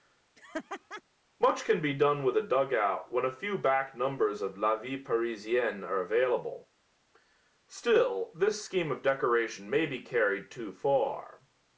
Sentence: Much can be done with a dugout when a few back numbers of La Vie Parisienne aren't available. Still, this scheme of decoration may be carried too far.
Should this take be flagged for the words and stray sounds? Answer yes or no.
yes